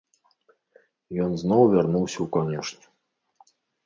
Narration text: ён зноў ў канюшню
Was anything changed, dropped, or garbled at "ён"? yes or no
no